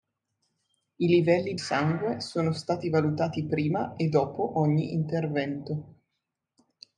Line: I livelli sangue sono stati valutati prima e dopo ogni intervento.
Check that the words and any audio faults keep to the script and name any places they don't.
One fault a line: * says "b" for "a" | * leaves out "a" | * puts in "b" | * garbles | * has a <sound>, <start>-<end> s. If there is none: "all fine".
all fine